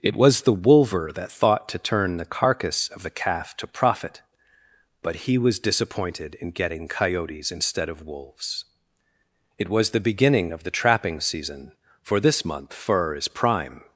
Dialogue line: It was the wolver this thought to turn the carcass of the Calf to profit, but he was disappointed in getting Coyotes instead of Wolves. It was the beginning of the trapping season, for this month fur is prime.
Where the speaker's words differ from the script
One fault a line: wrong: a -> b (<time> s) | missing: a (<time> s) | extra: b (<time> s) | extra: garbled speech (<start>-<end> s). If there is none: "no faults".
wrong: this -> that (1.1 s)